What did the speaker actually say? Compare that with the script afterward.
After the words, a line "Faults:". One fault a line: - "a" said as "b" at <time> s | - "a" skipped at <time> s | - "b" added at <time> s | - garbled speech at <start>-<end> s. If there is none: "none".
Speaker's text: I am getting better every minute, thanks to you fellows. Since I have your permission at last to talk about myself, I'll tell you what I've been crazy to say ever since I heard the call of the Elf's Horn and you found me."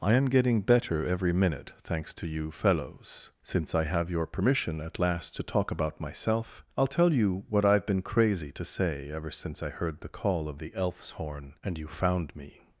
I am getting better every minute, thanks to you fellows. Since I have your permission at last to talk about myself, I'll tell you what I've been crazy to say ever since I heard the call of the Elf's Horn and you found me."
Faults:
none